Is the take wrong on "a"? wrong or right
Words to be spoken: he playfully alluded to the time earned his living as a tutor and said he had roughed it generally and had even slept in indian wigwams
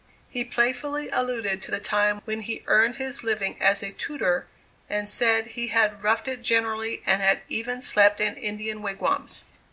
right